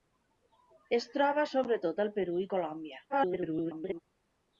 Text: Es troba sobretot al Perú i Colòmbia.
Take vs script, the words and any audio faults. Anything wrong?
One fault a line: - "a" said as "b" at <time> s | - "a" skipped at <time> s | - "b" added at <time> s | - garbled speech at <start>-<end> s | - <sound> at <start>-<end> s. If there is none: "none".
- garbled speech at 3.1-4.0 s